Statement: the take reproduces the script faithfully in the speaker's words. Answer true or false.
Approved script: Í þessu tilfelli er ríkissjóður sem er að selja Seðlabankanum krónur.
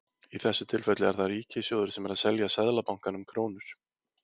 false